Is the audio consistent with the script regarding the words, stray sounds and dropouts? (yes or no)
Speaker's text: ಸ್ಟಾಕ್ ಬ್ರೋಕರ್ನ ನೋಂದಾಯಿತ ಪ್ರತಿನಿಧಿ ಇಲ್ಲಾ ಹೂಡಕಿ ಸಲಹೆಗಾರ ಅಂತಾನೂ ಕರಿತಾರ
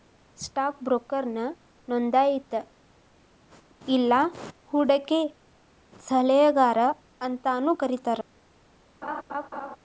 no